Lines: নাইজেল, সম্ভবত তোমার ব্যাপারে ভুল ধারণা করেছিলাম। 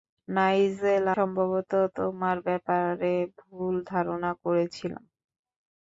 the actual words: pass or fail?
pass